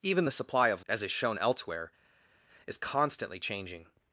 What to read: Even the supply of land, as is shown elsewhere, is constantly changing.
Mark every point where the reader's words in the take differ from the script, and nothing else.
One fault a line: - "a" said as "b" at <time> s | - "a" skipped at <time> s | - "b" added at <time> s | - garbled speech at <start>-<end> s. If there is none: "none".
- "land" skipped at 0.8 s